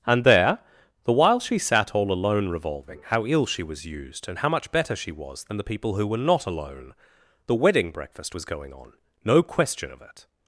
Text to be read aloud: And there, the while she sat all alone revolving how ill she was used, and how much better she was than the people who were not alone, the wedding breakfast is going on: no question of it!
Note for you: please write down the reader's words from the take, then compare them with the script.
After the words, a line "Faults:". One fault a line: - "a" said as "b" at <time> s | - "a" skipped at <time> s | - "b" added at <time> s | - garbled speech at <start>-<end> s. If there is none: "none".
And there, the while she sat all alone revolving how ill she was used, and how much better she was than the people who were not alone, the wedding breakfast was going on: no question of it!
Faults:
- "is" said as "was" at 8.3 s